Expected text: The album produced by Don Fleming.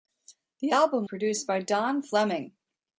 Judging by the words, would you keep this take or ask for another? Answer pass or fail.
pass